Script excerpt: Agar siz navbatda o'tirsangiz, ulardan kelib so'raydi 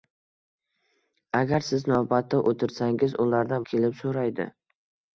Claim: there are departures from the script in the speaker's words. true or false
false